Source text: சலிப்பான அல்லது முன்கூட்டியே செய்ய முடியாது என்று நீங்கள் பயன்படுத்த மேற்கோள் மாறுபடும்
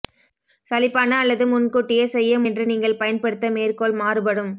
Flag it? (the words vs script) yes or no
yes